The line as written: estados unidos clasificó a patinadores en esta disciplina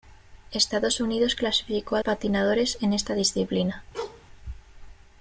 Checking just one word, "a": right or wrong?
right